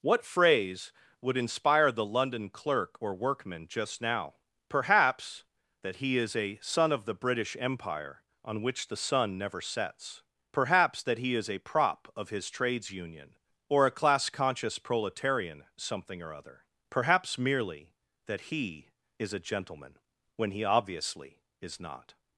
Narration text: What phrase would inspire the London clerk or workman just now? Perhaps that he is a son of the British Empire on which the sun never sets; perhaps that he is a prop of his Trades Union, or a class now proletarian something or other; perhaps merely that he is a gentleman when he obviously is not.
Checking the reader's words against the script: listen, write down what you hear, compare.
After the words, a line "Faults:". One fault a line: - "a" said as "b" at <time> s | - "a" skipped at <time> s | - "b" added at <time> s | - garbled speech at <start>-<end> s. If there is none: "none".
What phrase would inspire the London clerk or workman just now? Perhaps that he is a son of the British Empire on which the sun never sets; perhaps that he is a prop of his Trades Union, or a class conscious proletarian something or other; perhaps merely that he is a gentleman when he obviously is not.
Faults:
- "now" said as "conscious" at 14.3 s